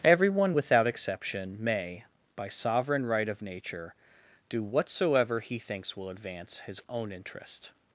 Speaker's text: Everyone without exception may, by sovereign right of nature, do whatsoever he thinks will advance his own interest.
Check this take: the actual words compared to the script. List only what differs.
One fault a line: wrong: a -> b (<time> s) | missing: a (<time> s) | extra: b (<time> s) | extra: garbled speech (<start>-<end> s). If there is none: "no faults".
no faults